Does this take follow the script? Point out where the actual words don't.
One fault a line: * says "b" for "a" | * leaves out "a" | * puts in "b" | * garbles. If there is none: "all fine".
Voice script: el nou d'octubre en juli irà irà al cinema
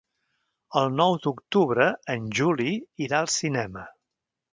* leaves out "irà"